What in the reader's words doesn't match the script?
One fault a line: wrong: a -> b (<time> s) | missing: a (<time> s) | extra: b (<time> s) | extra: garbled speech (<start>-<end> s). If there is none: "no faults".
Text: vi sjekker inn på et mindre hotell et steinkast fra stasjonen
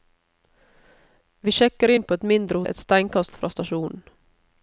missing: hotell (2.6 s)